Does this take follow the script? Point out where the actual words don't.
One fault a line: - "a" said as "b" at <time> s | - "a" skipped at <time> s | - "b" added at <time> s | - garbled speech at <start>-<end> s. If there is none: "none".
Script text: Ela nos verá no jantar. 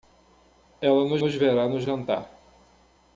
- "nos" added at 1.2 s